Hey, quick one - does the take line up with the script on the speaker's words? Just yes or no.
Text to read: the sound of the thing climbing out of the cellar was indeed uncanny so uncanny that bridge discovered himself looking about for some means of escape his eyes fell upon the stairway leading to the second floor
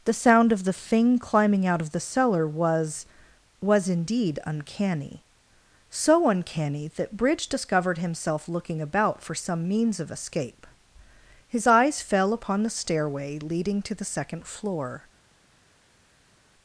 no